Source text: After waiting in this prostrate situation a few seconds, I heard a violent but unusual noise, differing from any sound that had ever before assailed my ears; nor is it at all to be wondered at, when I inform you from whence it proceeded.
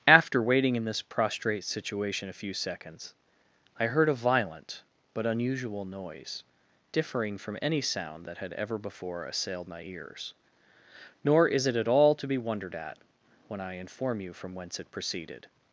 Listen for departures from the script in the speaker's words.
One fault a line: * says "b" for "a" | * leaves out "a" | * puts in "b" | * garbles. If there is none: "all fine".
all fine